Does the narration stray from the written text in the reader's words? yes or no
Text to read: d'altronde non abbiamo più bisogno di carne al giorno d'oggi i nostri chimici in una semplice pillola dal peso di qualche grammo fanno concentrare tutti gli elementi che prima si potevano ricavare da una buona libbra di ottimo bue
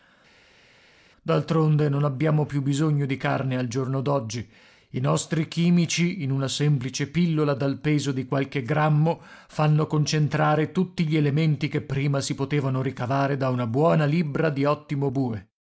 no